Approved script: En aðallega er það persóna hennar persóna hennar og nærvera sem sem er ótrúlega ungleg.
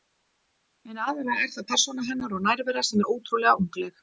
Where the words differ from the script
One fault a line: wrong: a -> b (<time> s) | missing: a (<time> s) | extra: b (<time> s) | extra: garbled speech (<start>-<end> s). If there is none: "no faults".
missing: persóna hennar (2.4 s)
missing: sem (3.0 s)